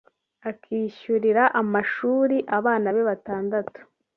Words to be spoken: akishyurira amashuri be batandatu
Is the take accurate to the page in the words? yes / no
no